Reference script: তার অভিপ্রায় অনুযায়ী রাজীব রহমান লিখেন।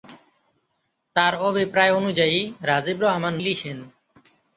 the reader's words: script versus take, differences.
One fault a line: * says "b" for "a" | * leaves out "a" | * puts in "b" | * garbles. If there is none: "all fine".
all fine